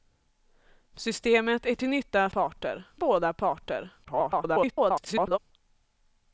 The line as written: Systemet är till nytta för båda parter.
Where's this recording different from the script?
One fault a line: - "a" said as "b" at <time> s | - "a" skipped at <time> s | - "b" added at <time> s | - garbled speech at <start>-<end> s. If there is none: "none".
- "för" said as "parter" at 2.3 s
- garbled speech at 4.0-5.4 s